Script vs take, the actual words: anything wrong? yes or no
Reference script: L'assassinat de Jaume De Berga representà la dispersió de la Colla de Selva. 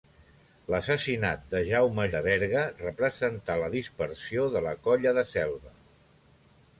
no